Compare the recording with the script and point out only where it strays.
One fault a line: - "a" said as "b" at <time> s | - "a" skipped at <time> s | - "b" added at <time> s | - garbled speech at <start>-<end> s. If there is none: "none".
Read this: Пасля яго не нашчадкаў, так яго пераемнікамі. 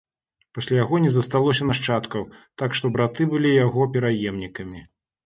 - "засталося" added at 1.1 s
- "што браты былі" added at 2.8 s